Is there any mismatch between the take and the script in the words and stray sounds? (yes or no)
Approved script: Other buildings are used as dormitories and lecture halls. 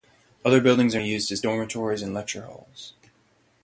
no